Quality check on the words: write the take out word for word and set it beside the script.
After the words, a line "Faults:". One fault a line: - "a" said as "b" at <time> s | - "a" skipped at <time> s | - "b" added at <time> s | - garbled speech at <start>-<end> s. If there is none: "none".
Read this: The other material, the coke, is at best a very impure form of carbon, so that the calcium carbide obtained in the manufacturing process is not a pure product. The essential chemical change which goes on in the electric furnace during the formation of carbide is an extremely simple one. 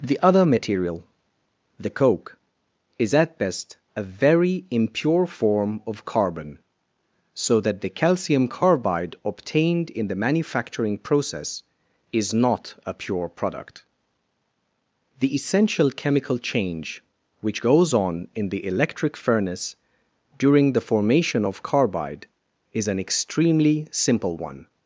The other material, the coke, is at best a very impure form of carbon, so that the calcium carbide obtained in the manufacturing process is not a pure product. The essential chemical change which goes on in the electric furnace during the formation of carbide is an extremely simple one.
Faults:
none